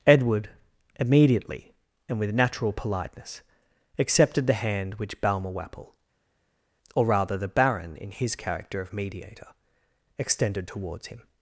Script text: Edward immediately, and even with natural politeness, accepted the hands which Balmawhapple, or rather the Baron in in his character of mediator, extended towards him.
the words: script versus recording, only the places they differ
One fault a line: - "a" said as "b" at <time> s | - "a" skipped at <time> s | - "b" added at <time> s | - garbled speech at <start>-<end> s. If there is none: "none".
- "even" skipped at 2.2 s
- "hands" said as "hand" at 4.5 s
- "in" skipped at 8.1 s